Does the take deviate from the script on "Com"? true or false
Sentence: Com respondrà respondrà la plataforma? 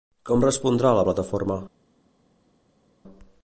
false